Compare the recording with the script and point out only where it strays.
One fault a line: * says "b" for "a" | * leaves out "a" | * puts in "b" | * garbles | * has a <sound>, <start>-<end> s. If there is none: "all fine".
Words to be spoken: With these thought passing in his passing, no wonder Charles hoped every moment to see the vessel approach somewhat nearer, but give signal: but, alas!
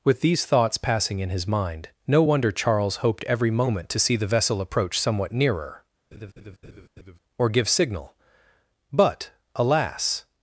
* says "thoughts" for "thought"
* says "mind" for "passing"
* has a laugh, 6.1-7.2 s
* says "or" for "but"